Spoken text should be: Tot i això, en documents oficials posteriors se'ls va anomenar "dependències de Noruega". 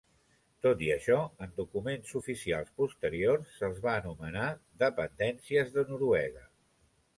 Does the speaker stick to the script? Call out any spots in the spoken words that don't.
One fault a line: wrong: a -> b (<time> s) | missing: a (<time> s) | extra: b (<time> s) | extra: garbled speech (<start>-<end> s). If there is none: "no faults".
no faults